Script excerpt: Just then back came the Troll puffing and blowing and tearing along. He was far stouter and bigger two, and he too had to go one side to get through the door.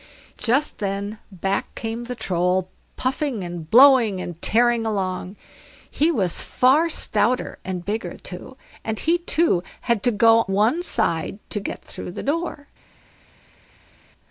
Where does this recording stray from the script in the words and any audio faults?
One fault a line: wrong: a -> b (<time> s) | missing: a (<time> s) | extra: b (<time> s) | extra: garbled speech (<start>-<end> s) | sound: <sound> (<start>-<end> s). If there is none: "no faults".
no faults